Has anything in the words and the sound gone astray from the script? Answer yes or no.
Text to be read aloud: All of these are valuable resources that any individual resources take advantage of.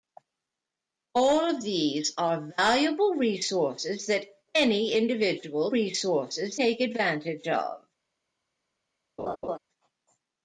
yes